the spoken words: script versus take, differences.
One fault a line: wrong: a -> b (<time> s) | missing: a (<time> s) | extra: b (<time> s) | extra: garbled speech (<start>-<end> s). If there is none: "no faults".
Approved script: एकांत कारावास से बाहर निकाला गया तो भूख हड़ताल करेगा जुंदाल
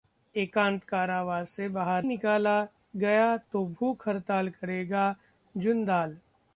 no faults